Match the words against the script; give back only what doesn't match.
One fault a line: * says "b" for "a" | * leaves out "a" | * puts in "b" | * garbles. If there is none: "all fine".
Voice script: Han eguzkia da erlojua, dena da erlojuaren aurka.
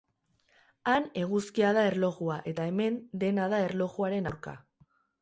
* puts in "eta hemen"